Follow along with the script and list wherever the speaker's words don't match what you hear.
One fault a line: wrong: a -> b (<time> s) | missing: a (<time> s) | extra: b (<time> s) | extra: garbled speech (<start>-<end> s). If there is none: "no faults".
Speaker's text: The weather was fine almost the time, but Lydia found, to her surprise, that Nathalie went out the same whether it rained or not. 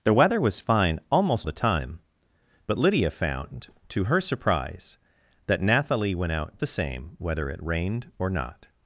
no faults